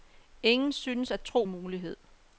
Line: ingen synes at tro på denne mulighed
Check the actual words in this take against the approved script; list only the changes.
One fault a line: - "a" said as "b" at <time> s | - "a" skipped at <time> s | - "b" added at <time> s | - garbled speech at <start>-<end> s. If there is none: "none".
- "på denne" skipped at 1.4 s